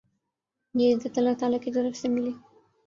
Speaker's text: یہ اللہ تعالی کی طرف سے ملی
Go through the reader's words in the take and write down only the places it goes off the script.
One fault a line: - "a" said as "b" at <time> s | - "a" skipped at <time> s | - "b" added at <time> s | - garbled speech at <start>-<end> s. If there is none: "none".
- "عزت" added at 0.9 s